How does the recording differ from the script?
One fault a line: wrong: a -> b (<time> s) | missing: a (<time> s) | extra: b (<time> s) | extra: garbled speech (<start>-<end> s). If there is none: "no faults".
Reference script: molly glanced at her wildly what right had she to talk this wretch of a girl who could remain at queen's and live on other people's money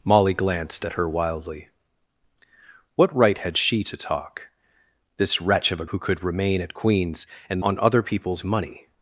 missing: girl (5.8 s)
missing: live (7.6 s)